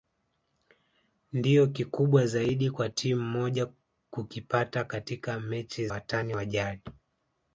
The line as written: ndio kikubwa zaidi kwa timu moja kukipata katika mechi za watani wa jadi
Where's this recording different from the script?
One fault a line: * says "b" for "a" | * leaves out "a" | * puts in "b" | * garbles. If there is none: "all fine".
* leaves out "za"